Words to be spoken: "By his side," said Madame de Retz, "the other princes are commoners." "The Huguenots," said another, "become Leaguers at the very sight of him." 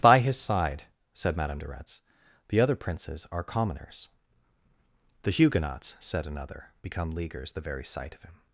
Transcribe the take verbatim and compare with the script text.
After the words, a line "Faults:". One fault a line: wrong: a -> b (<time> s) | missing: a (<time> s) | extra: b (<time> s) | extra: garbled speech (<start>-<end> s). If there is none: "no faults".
"By his side," said Madame de Retz, "the other princes are commoners." "The Huguenots," said another, "become Leaguers the very sight of him."
Faults:
missing: at (7.5 s)